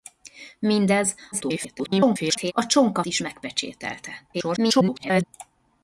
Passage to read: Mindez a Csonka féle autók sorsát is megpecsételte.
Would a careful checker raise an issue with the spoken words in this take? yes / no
yes